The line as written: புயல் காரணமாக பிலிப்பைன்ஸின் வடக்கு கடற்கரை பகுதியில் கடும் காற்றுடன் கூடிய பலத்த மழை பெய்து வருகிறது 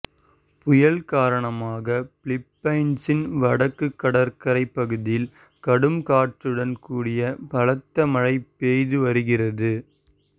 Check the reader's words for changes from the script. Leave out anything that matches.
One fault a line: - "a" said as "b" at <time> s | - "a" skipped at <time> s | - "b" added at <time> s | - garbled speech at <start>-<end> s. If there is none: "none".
none